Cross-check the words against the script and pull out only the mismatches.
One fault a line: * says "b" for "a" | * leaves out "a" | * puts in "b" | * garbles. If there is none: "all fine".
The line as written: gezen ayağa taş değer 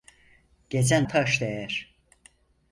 * leaves out "ayağa"